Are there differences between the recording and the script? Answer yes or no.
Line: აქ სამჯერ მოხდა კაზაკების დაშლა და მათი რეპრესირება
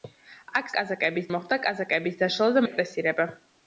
yes